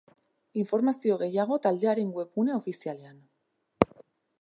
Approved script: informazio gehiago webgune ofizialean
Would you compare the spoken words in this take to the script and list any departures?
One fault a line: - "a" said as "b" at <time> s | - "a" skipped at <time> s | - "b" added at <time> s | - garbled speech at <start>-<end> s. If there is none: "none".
- "taldearen" added at 1.7 s